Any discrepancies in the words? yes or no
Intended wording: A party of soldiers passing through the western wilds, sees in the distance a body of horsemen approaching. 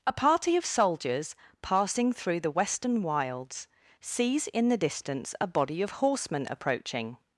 no